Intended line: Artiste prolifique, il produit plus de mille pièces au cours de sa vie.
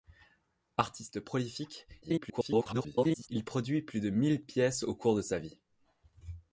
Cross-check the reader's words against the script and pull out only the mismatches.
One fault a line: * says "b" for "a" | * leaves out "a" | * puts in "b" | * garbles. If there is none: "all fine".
* garbles